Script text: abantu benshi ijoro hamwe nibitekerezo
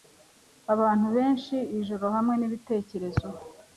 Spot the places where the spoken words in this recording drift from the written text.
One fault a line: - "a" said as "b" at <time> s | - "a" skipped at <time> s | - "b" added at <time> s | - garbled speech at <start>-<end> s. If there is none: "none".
none